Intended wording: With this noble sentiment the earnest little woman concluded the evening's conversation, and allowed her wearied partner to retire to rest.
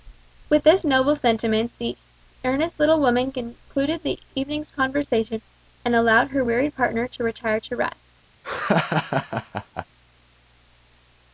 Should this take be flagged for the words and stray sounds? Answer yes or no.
yes